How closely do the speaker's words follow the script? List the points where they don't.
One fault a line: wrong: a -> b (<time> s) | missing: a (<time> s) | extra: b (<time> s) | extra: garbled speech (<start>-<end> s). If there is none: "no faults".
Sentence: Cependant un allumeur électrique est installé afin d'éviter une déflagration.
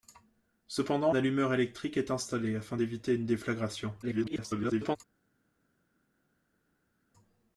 missing: un (1.1 s)
extra: garbled speech (4.0-5.0 s)